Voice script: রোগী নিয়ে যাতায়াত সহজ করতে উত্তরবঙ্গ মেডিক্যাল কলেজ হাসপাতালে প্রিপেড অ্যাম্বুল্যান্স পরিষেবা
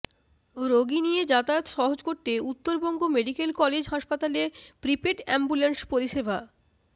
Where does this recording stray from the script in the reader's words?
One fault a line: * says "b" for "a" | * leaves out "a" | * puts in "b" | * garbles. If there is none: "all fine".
all fine